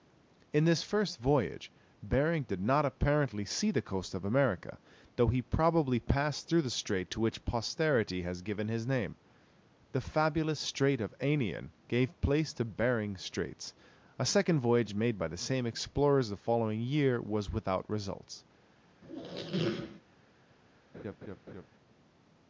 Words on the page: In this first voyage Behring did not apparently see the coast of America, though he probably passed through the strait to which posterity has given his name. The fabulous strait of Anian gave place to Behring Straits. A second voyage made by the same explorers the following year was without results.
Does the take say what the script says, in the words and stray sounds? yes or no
no